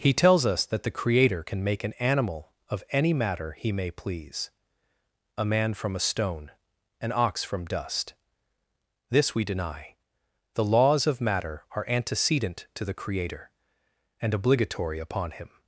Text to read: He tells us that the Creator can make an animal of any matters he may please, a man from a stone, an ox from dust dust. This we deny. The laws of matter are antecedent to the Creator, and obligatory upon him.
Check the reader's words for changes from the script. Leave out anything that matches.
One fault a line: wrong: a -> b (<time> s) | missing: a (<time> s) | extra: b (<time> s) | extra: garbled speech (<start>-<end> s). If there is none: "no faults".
wrong: matters -> matter (3.1 s)
missing: dust (8.1 s)